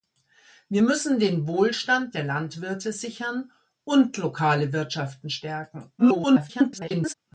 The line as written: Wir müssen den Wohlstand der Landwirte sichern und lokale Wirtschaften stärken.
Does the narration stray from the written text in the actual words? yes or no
yes